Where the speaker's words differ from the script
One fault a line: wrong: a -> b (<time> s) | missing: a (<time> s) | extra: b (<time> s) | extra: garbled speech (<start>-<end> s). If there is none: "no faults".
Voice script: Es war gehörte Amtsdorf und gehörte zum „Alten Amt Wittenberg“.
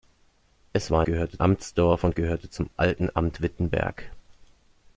no faults